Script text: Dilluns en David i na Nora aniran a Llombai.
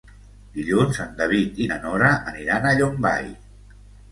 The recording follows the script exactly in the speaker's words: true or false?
true